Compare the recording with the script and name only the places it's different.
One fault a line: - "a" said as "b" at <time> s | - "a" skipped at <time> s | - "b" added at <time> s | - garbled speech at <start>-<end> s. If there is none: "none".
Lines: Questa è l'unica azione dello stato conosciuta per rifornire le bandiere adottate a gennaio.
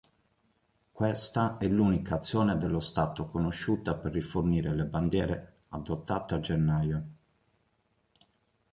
none